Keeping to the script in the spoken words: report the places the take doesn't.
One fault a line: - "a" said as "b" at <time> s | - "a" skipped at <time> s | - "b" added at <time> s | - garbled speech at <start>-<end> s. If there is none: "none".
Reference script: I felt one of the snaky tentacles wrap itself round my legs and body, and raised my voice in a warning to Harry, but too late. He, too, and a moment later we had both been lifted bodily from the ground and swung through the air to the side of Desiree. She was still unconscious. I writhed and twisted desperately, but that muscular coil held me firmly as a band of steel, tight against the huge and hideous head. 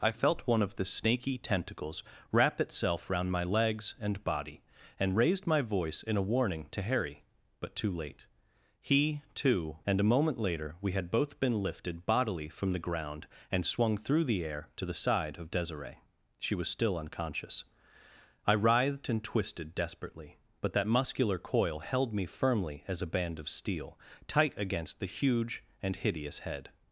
none